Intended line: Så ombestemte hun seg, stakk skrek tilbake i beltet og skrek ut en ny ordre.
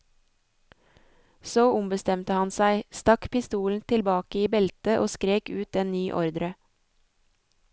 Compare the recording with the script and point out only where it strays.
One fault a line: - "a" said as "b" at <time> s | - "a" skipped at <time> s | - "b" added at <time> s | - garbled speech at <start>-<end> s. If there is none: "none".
- "hun" said as "han" at 2.4 s
- "skrek" said as "pistolen" at 3.3 s